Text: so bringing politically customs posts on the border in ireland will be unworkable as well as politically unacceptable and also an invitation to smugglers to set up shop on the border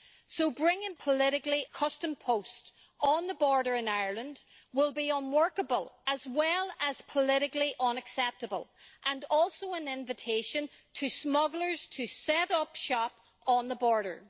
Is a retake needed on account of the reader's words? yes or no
no